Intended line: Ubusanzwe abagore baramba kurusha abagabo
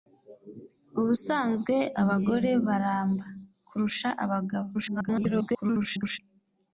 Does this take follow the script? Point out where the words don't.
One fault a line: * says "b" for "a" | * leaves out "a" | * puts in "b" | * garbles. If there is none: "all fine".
* garbles